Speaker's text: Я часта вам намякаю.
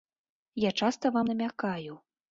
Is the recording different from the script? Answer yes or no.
no